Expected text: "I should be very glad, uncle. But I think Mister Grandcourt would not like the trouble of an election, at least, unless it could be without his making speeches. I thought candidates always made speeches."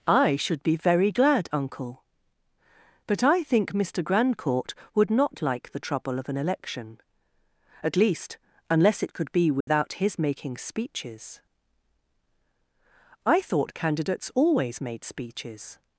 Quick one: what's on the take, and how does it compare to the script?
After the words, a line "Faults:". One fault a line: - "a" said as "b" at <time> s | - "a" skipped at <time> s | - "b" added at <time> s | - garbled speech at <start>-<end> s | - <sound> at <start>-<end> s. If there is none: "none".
"I should be very glad, uncle. But I think Mister Grandcourt would not like the trouble of an election, at least, unless it could be without his making speeches. I thought candidates always made speeches."
Faults:
- dropout at 9.6-9.7 s